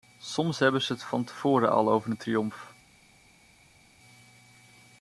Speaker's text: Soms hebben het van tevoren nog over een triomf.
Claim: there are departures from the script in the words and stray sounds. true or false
true